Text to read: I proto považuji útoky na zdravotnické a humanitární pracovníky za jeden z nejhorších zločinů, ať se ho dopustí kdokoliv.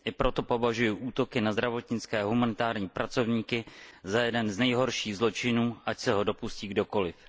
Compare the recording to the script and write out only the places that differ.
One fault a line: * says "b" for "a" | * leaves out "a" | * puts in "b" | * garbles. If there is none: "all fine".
all fine